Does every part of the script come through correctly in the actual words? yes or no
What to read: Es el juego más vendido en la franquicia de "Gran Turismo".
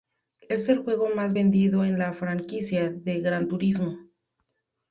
yes